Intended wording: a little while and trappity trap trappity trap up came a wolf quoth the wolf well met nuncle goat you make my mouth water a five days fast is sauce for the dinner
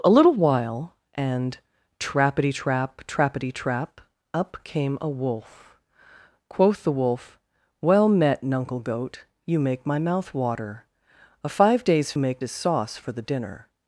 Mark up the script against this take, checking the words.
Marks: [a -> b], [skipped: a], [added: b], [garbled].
a little while and trappity trap trappity trap up came a wolf quoth the wolf well met nuncle goat you make my mouth water a five days [fast -> make] is sauce for the dinner